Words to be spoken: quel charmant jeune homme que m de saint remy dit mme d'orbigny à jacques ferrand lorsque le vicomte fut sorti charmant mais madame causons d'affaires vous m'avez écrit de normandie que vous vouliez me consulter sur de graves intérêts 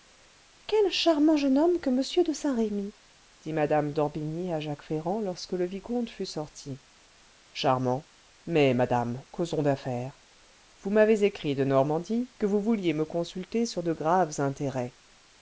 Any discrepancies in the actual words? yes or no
no